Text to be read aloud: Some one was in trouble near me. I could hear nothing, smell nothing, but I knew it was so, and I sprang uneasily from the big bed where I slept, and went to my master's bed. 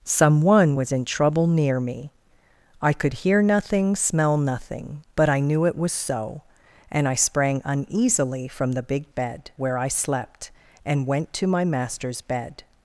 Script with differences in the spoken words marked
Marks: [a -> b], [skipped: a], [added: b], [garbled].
Some one was in trouble near me. I could hear nothing, smell nothing, but I knew it was so, and I sprang uneasily from the big bed where I slept, and went to my master's bed.